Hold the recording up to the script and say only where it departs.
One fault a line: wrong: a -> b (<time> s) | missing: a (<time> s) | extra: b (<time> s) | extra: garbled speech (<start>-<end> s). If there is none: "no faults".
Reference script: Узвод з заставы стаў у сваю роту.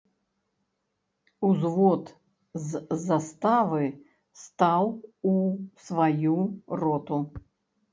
no faults